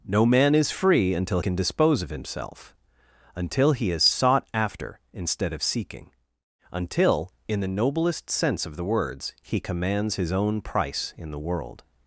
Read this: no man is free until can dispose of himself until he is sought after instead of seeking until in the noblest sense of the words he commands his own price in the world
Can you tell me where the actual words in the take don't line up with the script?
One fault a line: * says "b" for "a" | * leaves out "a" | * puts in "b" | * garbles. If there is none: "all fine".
all fine